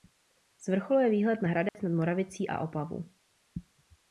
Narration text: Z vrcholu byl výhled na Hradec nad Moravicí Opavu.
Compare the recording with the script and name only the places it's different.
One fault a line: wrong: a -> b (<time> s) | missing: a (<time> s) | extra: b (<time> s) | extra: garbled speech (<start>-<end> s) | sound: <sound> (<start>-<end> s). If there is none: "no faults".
wrong: byl -> je (1.0 s)
sound: dropout (1.7-1.7 s)
extra: a (2.5 s)